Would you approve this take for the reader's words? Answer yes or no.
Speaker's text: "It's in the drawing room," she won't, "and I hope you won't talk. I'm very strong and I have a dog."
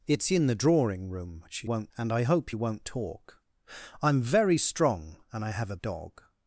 yes